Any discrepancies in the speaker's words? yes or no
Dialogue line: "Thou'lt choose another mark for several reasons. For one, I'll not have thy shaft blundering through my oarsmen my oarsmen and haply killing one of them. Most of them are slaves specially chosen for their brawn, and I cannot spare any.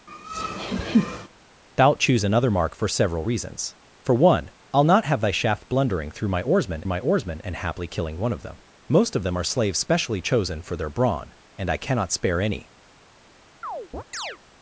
no